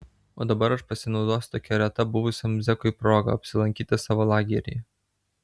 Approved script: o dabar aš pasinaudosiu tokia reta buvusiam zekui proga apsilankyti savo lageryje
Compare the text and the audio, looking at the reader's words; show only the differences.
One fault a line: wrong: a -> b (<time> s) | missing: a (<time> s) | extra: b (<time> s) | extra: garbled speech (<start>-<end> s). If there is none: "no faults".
no faults